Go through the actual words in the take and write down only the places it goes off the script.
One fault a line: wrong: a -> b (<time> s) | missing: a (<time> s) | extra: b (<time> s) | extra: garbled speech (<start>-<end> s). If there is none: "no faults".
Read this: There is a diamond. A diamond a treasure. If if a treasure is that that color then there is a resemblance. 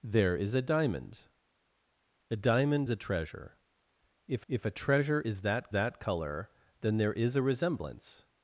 no faults